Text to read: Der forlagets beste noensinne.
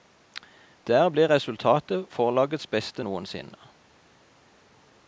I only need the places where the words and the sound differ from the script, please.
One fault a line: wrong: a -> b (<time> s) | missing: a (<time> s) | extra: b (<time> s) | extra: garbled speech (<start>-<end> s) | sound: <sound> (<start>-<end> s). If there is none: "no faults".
extra: ble resultatet (1.1 s)